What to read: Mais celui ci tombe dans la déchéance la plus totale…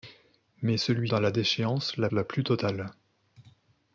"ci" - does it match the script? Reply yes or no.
no